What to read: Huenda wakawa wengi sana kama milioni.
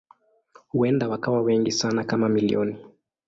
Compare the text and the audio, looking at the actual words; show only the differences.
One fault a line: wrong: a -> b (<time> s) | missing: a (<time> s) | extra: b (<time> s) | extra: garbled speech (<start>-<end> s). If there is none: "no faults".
no faults